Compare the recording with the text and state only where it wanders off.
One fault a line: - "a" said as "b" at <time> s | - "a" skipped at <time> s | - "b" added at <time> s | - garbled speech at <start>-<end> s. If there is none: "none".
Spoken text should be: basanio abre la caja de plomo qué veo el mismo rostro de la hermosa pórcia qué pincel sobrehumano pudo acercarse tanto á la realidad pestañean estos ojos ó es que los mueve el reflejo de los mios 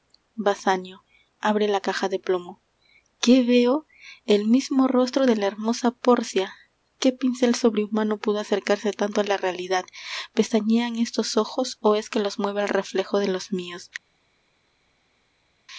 none